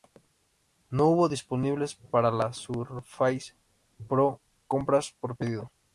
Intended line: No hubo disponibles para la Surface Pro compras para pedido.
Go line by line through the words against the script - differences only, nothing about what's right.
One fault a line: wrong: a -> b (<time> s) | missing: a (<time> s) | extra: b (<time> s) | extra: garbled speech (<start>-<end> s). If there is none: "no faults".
wrong: para -> por (5.2 s)